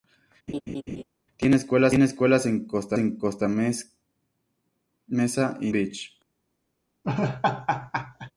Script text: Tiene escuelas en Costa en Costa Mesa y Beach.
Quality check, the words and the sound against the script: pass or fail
fail